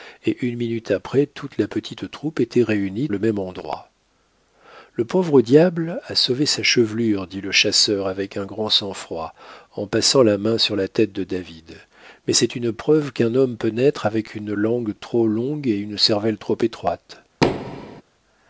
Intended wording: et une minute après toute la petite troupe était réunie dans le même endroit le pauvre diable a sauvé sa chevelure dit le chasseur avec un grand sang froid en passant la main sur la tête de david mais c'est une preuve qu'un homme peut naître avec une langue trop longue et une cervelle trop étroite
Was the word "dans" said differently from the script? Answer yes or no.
yes